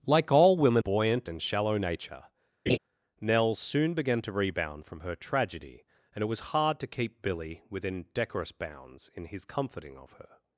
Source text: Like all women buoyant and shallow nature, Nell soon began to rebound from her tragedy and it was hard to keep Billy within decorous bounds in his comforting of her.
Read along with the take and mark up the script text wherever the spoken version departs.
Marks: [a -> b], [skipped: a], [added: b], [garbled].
Like all women buoyant and shallow nature, Nell soon began to rebound from her tragedy and it was hard to keep Billy within decorous bounds in his comforting of her.